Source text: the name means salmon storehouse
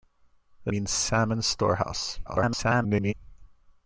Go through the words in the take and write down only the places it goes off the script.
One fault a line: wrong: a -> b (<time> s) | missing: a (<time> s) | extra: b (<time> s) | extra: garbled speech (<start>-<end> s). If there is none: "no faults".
missing: name (0.7 s)
extra: garbled speech (2.3-3.1 s)